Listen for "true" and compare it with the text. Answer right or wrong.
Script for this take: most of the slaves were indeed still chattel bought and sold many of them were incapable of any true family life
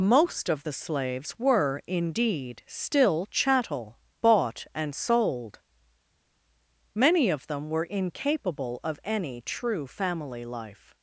right